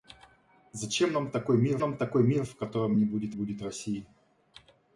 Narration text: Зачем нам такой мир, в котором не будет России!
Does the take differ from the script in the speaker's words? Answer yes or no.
yes